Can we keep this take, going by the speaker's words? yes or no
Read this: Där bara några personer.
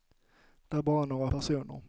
yes